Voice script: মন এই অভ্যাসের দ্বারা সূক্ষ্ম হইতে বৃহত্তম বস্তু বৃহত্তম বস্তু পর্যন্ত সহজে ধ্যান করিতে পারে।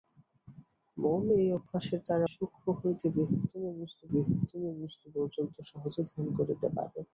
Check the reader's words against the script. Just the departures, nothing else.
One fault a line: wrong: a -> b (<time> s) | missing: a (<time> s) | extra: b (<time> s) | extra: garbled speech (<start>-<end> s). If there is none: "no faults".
no faults